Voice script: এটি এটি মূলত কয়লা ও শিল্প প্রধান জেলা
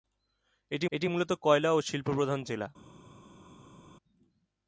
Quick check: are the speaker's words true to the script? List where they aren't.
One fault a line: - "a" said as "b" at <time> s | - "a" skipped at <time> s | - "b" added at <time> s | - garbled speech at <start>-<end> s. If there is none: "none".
none